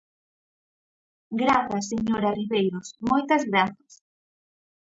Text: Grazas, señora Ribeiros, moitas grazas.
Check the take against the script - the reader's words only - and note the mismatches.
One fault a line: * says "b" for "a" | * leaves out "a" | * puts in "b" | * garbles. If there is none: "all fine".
all fine